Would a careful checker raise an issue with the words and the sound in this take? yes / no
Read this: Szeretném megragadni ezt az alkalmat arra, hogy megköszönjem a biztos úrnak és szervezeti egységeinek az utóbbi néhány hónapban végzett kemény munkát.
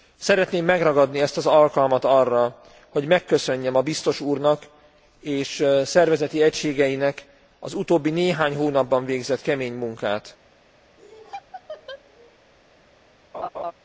yes